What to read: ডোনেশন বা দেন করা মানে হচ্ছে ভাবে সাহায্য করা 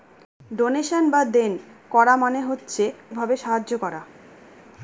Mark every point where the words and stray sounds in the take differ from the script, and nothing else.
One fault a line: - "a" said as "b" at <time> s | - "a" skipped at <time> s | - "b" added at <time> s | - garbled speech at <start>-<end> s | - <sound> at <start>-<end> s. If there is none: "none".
none